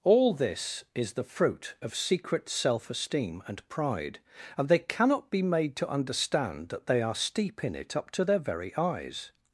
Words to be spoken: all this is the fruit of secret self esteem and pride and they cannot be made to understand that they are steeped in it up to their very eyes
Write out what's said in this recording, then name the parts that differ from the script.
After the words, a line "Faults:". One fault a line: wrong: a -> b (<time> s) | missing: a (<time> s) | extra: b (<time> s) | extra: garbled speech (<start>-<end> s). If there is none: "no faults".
all this is the fruit of secret self esteem and pride and they cannot be made to understand that they are steep in it up to their very eyes
Faults:
wrong: steeped -> steep (7.2 s)